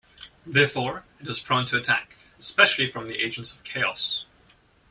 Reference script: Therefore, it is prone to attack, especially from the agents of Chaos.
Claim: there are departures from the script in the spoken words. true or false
false